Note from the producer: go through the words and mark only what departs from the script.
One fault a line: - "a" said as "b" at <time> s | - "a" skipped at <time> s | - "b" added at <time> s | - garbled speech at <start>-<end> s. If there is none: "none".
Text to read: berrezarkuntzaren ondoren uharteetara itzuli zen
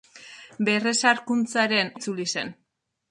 - "ondoren uharteetara" skipped at 1.9 s